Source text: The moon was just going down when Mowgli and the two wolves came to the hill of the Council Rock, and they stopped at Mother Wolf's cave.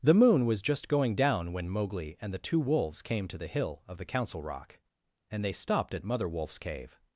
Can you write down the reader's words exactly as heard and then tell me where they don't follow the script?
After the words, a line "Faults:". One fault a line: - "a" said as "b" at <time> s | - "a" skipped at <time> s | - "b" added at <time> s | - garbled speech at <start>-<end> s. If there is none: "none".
The moon was just going down when Mowgli and the two wolves came to the hill of the Council Rock, and they stopped at Mother Wolf's cave.
Faults:
none